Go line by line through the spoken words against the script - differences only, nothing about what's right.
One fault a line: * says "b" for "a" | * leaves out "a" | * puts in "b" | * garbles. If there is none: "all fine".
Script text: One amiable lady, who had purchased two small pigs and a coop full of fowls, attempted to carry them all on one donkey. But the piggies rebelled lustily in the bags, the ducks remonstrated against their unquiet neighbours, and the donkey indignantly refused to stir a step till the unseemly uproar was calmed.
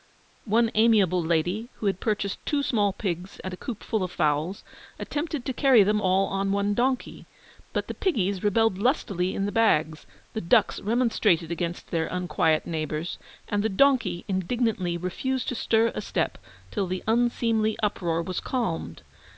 all fine